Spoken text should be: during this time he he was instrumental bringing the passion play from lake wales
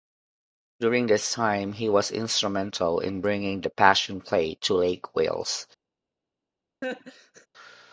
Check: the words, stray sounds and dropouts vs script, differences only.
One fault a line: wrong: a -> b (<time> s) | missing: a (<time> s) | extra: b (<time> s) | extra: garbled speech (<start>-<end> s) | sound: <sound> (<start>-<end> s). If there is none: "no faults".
missing: he (1.9 s)
extra: in (3.0 s)
wrong: from -> to (4.6 s)
sound: laugh (6.8-7.5 s)